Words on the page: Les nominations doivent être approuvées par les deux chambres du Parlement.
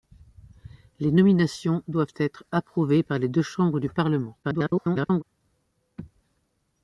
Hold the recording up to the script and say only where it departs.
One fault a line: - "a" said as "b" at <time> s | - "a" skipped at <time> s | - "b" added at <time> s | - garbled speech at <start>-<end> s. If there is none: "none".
- garbled speech at 4.4-5.2 s